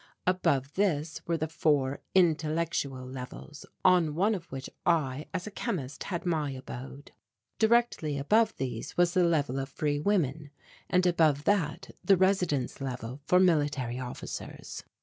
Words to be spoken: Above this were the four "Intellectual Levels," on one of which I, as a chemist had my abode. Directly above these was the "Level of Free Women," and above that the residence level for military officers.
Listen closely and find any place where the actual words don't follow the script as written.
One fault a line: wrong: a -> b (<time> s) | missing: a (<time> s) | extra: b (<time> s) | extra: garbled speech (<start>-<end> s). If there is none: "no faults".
no faults